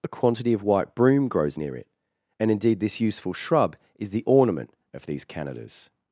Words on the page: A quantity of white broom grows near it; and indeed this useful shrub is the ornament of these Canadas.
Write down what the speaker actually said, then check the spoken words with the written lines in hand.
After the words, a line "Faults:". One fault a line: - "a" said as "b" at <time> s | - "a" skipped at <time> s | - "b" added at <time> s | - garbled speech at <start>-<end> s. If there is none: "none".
A quantity of white broom grows near it; and indeed this useful shrub is the ornament of these Canadas.
Faults:
none